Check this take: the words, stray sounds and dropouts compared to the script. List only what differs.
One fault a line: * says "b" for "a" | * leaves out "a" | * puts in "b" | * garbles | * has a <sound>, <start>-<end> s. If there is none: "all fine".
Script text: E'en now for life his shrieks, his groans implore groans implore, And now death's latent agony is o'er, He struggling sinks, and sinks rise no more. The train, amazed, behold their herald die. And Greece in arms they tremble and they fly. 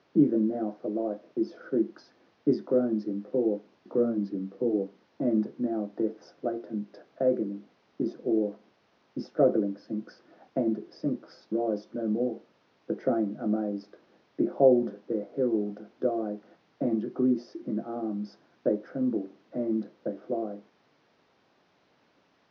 all fine